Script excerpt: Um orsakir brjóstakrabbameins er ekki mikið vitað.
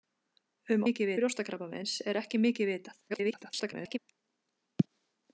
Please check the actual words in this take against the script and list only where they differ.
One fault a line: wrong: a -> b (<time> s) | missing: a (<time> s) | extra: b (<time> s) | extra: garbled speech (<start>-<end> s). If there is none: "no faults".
wrong: orsakir -> mikið (0.9 s)
extra: garbled speech (3.1-4.0 s)